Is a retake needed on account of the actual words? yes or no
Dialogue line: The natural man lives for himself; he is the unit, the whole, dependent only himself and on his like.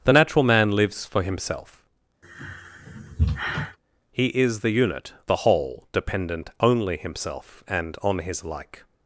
no